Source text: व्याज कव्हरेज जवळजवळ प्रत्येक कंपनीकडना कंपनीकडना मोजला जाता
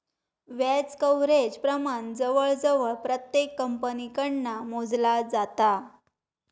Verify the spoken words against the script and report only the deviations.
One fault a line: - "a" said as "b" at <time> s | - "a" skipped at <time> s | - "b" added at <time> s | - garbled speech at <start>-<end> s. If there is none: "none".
- "प्रमाण" added at 1.6 s
- "कंपनीकडना" skipped at 4.6 s